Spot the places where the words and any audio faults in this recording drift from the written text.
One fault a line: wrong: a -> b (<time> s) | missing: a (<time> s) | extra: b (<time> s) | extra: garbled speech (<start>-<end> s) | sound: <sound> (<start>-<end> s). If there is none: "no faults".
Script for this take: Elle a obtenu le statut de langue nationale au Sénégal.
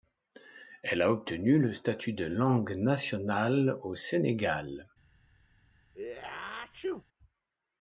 sound: sneeze (5.9-7.0 s)